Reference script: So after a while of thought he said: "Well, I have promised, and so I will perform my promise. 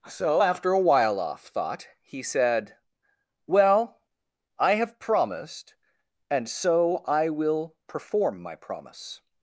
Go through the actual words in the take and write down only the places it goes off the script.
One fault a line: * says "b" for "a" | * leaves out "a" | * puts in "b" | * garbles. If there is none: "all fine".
* says "off" for "of"